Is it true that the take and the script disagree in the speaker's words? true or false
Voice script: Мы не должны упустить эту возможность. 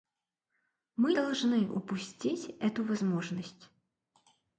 true